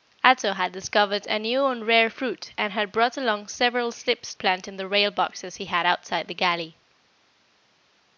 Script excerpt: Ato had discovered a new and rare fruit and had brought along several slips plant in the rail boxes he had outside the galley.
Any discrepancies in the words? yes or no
no